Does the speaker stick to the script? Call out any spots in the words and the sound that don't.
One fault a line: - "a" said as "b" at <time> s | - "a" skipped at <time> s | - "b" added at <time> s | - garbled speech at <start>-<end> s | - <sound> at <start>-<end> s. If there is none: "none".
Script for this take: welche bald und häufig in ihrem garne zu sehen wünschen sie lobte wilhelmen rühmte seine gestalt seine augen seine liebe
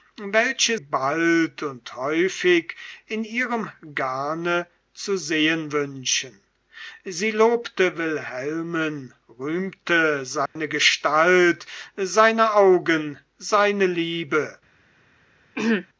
- dropout at 10.5-10.6 s
- throat clearing at 15.5-15.9 s